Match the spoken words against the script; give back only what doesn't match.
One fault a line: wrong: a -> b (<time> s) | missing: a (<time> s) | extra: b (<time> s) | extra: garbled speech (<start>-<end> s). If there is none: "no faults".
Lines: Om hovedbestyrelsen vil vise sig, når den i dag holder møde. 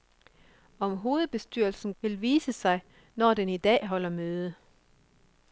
no faults